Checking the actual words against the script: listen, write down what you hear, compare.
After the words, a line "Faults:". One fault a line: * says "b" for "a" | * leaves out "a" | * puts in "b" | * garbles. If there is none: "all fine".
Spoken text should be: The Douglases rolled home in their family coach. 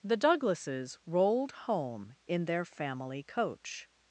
The Douglases rolled home in their family coach.
Faults:
all fine